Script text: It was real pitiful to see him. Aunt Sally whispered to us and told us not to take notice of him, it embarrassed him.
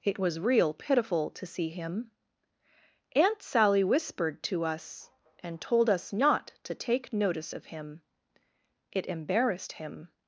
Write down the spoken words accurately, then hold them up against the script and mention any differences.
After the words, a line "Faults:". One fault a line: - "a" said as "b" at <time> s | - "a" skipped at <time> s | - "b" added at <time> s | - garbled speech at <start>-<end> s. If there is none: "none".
It was real pitiful to see him. Aunt Sally whispered to us and told us not to take notice of him, it embarrassed him.
Faults:
none